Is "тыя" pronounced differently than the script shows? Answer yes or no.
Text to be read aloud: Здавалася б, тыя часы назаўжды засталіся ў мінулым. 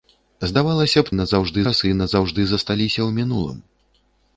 yes